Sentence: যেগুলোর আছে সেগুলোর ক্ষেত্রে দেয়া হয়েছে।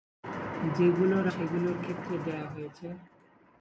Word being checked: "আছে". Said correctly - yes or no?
no